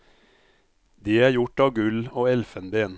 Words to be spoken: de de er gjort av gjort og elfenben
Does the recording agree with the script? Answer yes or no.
no